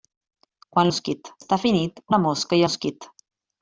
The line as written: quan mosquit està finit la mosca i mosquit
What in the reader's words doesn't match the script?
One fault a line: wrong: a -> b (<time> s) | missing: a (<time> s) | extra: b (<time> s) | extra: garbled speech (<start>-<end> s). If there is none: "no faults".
no faults